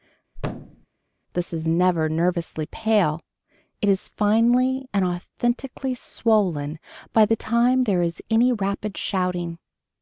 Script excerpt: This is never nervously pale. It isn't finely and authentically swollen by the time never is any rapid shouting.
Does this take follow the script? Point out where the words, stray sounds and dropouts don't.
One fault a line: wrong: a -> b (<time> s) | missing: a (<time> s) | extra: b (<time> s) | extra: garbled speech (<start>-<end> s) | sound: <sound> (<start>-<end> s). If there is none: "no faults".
sound: thud (0.3-0.9 s)
wrong: isn't -> is (3.9 s)
wrong: never -> there (7.8 s)